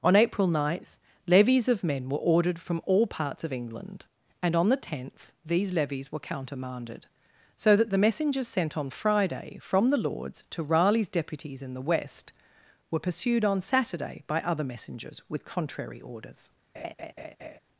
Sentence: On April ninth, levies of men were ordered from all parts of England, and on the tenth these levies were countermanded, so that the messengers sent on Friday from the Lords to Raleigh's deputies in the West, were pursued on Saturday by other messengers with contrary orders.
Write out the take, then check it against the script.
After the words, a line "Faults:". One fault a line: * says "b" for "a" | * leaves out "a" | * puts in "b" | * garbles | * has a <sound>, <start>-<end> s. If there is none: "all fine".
On April ninth, levies of men were ordered from all parts of England, and on the tenth these levies were countermanded, so that the messengers sent on Friday from the Lords to Raleigh's deputies in the West, were pursued on Saturday by other messengers with contrary orders.
Faults:
* has a laugh, 16.7-17.6 s